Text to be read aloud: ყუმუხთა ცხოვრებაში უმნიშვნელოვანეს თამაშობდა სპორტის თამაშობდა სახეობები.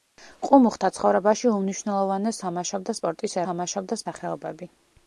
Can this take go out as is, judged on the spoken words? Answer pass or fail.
pass